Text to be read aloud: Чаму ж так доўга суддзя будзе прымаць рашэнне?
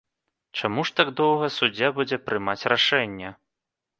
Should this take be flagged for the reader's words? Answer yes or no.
no